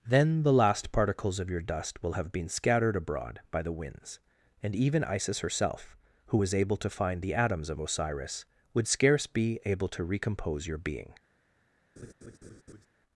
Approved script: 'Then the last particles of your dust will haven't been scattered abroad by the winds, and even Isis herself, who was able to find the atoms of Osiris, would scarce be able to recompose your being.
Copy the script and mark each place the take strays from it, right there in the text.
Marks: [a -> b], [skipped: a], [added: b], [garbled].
'Then the last particles of your dust will [haven't -> have] been scattered abroad by the winds, and even Isis herself, who was able to find the atoms of Osiris, would scarce be able to recompose your being.